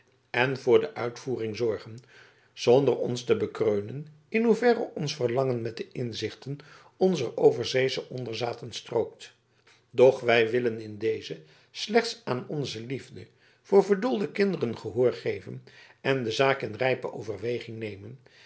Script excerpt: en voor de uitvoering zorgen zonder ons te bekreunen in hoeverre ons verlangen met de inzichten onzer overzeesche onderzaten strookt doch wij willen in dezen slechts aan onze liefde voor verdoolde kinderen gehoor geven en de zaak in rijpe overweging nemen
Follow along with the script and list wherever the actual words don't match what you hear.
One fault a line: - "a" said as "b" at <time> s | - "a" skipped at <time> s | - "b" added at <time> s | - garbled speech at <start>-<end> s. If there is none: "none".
none